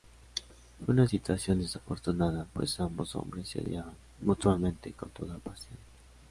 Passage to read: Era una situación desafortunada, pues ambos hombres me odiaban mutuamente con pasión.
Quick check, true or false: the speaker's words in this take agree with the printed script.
false